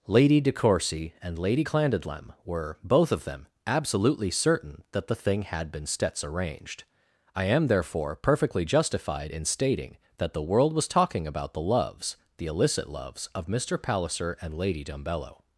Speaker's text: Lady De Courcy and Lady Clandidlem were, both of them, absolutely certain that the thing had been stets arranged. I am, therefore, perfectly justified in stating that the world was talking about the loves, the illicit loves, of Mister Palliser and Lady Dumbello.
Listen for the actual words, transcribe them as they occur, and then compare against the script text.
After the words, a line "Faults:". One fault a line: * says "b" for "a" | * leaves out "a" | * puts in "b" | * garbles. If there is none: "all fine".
Lady De Courcy and Lady Clandidlem were, both of them, absolutely certain that the thing had been stets arranged. I am, therefore, perfectly justified in stating that the world was talking about the loves, the illicit loves, of Mister Palliser and Lady Dumbello.
Faults:
all fine